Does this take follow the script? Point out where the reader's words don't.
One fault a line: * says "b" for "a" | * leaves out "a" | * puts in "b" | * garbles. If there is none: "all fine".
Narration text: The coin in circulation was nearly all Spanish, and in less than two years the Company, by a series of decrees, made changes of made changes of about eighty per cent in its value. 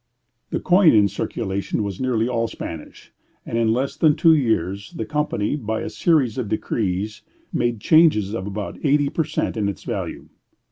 * leaves out "made changes of"